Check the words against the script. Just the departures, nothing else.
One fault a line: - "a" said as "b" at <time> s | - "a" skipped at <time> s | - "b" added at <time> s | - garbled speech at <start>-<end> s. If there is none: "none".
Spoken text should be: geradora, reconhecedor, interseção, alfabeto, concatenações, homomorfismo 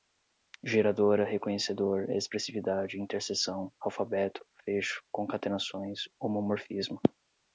- "expressividade" added at 2.1 s
- "fecho" added at 4.7 s